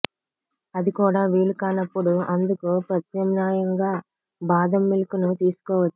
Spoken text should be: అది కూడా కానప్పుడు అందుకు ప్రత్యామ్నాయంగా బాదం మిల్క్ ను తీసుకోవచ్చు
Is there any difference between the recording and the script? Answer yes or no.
yes